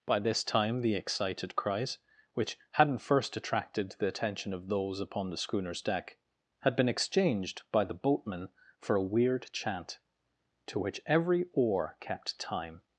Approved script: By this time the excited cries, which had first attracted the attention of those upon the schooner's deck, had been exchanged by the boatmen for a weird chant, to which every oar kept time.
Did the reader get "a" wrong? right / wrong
right